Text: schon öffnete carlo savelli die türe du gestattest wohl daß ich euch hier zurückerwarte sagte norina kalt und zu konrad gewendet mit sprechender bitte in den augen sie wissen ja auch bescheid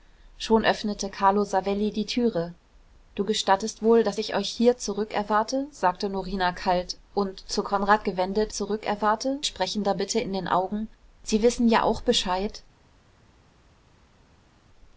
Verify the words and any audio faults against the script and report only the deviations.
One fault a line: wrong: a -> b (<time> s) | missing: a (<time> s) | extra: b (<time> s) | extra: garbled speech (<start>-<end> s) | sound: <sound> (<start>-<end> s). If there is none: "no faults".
wrong: mit -> zurückerwarte (8.5 s)